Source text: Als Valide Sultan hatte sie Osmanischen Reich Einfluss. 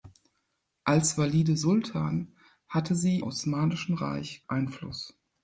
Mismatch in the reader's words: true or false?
false